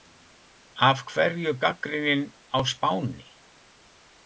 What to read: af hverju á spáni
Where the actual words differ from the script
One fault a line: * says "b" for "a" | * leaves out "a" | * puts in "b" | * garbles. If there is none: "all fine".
* puts in "gagnrýnin"